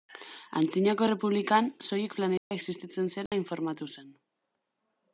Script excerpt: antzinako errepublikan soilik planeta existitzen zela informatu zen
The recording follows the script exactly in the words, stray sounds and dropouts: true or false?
false